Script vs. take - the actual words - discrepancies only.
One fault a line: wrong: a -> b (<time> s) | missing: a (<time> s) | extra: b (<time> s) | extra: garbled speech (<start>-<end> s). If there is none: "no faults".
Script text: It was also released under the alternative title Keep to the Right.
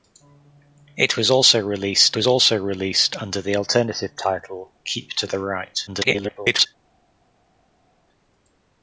extra: was also released (2.1 s)
extra: garbled speech (5.9-6.7 s)